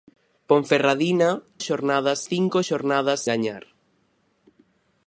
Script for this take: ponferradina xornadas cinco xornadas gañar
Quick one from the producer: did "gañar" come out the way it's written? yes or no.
yes